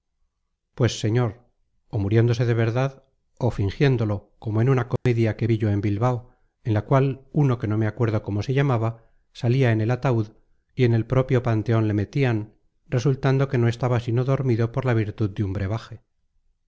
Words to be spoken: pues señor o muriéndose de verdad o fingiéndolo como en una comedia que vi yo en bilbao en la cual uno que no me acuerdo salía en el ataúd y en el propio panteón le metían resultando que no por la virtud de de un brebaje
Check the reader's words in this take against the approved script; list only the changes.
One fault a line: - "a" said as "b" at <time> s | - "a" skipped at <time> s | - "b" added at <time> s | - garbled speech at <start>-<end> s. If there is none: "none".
- "cómo se llamaba" added at 8.2 s
- "estaba sino dormido" added at 13.7 s
- "de" skipped at 15.4 s